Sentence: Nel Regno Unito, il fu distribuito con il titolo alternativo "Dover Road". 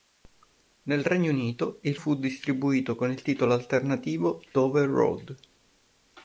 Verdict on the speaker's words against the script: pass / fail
pass